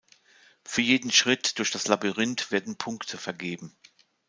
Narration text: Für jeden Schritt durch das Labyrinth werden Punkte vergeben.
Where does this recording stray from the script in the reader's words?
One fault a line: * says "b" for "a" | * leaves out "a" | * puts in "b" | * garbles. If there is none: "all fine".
all fine